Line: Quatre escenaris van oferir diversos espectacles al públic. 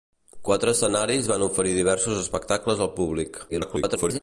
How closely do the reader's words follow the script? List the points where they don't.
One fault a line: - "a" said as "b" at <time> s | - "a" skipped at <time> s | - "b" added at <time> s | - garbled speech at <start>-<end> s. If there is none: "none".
- garbled speech at 3.5-4.2 s